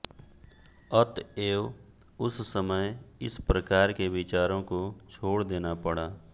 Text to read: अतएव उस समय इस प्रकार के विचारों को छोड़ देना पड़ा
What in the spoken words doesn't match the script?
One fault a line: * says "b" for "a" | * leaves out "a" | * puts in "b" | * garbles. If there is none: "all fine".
all fine